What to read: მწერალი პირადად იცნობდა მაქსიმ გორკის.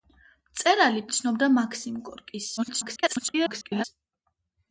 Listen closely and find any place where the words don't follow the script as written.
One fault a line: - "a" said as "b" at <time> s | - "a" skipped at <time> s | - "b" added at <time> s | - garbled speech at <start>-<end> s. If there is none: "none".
- "პირადად" skipped at 1.0 s
- garbled speech at 2.6-3.8 s